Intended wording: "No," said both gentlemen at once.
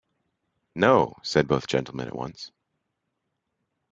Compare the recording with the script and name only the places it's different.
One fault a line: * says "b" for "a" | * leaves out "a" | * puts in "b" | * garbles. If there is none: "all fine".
all fine